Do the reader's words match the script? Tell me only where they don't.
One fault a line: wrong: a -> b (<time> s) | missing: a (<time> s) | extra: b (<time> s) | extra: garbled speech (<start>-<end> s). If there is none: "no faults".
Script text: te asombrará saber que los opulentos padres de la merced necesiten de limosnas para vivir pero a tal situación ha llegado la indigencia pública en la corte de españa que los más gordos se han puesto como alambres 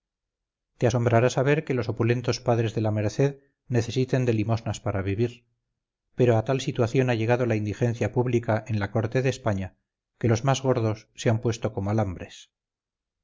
no faults